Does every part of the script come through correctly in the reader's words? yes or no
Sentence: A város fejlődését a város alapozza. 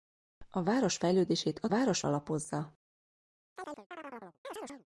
yes